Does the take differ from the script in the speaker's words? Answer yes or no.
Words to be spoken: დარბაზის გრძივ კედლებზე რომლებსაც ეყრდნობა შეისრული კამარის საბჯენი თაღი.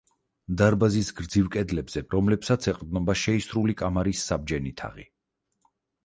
no